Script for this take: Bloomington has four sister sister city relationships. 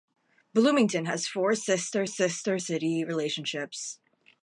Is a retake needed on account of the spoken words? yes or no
no